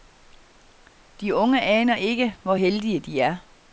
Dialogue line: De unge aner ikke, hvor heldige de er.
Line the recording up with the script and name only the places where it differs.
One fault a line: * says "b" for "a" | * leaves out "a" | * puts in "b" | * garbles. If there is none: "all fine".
all fine